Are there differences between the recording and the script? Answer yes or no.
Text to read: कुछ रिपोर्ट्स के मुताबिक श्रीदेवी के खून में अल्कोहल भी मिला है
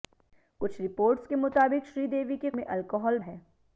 yes